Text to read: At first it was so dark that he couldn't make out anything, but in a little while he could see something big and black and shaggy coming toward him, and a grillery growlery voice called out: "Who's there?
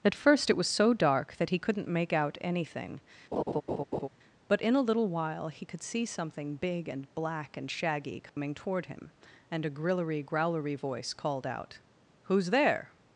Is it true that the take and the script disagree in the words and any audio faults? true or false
true